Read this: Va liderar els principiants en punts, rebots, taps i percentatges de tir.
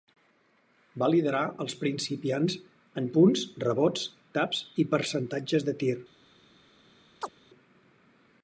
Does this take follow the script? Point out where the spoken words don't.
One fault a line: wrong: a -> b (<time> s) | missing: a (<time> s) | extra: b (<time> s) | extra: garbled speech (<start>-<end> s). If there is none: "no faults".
no faults